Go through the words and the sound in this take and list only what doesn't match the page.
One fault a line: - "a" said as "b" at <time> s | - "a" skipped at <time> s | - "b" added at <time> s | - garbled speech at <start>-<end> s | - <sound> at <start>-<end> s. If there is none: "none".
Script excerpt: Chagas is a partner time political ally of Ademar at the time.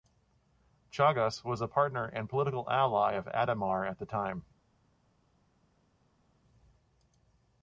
- "is" said as "was" at 1.4 s
- "time" said as "and" at 2.0 s